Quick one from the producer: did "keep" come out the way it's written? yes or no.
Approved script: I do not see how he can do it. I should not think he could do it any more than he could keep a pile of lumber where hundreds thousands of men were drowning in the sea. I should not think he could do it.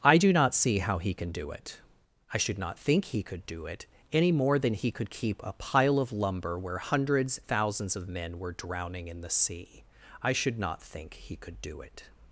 yes